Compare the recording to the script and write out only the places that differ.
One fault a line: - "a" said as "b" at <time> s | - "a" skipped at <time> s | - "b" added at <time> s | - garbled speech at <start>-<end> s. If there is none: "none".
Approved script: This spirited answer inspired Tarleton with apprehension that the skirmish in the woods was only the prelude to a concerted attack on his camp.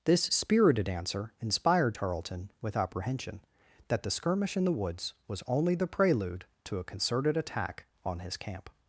none